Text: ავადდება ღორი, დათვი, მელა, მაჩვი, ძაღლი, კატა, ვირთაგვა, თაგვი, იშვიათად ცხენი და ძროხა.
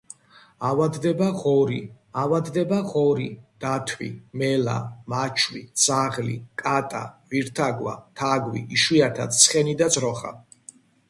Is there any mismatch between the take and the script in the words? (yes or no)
yes